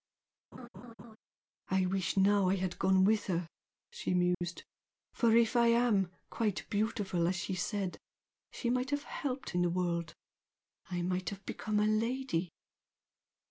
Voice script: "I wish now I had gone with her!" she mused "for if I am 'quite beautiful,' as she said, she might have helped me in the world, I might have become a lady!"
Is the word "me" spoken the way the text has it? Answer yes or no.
no